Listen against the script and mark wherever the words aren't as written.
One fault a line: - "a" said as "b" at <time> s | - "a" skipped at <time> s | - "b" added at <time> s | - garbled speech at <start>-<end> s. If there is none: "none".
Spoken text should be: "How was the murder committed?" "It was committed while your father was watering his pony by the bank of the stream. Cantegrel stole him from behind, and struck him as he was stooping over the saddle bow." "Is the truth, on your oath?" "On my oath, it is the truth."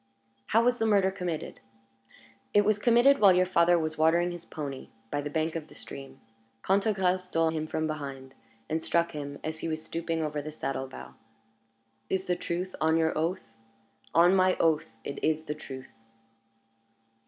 none